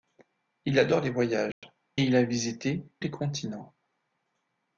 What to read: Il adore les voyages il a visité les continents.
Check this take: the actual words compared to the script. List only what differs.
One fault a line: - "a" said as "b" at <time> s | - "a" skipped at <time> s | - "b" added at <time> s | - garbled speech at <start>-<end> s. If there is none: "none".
none